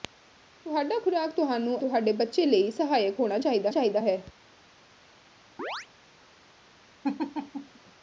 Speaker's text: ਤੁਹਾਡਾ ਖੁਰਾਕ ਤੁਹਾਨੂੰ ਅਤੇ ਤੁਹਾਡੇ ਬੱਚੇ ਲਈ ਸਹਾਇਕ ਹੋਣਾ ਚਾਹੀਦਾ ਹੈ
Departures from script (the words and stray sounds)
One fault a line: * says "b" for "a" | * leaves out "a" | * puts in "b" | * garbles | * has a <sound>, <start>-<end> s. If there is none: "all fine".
* leaves out "ਅਤੇ"
* puts in "ਚਾਹੀਦਾ"
* has a chirp, 5.6-5.9 s
* has a laugh, 7.0-7.8 s